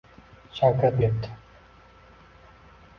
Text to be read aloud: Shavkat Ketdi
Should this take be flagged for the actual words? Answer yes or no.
no